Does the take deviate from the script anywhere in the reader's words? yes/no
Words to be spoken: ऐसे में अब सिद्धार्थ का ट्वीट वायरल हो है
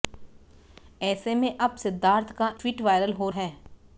no